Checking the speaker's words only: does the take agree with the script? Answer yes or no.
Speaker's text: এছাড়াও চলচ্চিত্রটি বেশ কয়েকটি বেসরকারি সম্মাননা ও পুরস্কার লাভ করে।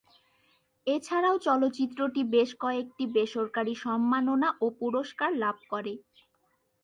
yes